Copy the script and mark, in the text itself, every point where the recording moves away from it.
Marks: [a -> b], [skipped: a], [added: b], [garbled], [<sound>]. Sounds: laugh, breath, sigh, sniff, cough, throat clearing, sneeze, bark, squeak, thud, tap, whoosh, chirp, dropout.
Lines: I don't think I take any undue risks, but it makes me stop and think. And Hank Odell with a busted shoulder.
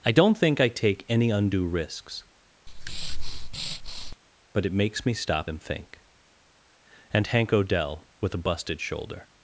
I don't think I take any undue risks, [breath] but it makes me stop and think. And Hank Odell with a busted shoulder.